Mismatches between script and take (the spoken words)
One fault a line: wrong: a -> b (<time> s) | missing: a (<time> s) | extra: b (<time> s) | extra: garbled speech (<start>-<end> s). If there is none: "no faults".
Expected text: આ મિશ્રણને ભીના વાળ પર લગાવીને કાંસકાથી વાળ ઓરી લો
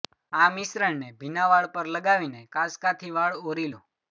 no faults